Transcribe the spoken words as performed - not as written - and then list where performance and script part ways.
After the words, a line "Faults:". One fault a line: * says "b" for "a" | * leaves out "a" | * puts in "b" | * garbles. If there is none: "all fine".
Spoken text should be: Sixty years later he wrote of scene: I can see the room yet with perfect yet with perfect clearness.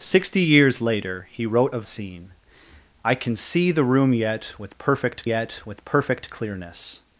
Sixty years later he wrote of scene: I can see the room yet with perfect yet with perfect clearness.
Faults:
all fine